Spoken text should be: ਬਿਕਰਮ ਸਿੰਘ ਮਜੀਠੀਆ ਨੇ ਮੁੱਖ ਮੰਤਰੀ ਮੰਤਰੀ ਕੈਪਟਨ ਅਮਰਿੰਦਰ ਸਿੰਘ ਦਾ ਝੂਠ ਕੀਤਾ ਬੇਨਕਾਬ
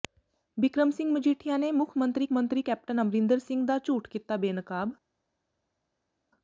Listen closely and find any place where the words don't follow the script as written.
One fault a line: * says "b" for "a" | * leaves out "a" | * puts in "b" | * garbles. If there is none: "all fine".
all fine